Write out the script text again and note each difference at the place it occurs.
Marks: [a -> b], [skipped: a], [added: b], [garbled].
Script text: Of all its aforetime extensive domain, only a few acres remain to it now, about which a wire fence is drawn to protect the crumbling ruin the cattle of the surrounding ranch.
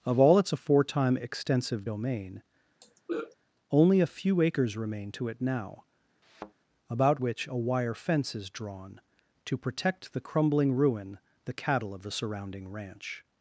Of all its aforetime extensive domain, only a few acres remain to it now, about which a wire fence is drawn to protect the crumbling ruin the cattle of the surrounding ranch.